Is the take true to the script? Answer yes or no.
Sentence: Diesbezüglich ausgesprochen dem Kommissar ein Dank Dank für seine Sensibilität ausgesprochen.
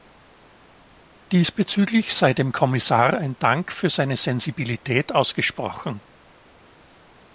no